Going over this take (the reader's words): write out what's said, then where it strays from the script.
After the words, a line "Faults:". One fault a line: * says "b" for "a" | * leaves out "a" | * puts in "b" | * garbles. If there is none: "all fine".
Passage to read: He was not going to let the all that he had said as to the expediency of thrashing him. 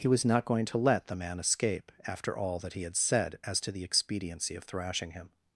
He was not going to let the man escape, after all that he had said as to the expediency of thrashing him.
Faults:
* puts in "man escape after"